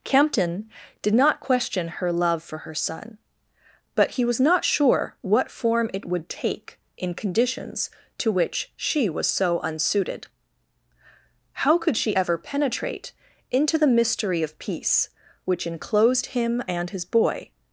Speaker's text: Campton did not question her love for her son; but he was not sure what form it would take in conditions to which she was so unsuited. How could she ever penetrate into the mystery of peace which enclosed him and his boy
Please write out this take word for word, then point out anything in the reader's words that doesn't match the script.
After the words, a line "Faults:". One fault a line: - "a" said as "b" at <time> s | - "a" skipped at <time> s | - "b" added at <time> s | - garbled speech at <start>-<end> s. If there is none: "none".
Campton did not question her love for her son; but he was not sure what form it would take in conditions to which she was so unsuited. How could she ever penetrate into the mystery of peace which enclosed him and his boy
Faults:
none